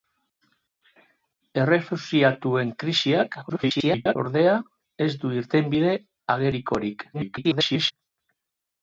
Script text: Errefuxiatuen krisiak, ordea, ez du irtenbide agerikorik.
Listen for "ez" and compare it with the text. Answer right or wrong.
right